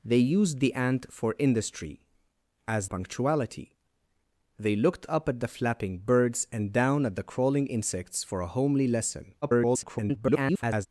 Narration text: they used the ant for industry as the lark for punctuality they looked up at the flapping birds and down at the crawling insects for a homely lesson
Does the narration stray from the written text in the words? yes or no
yes